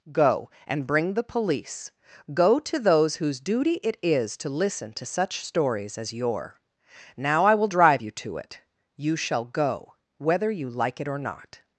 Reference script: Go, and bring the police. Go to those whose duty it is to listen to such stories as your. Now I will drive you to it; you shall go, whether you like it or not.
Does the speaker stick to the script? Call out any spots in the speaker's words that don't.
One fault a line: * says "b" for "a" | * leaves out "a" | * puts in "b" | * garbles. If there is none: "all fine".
all fine